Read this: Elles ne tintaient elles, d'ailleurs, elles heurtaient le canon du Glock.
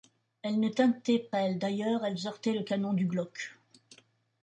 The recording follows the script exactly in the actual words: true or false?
true